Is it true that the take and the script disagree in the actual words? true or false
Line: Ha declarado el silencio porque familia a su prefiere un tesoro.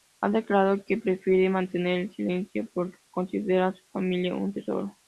true